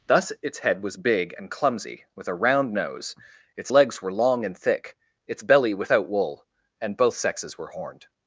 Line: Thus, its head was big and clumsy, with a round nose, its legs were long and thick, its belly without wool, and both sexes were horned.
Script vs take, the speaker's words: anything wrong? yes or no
no